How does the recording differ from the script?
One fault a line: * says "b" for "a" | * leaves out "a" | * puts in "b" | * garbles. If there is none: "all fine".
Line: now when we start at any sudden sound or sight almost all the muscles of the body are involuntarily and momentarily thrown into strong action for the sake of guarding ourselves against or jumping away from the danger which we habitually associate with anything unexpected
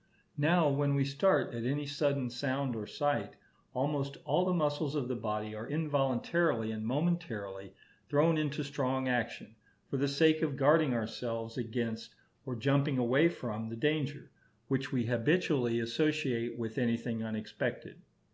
all fine